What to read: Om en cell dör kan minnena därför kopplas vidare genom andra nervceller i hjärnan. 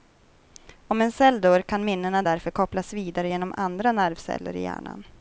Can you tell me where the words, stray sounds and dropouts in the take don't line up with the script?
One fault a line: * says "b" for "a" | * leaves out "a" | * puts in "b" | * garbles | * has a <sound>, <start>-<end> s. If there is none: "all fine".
all fine